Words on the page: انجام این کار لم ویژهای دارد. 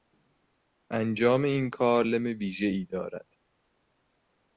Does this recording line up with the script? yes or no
yes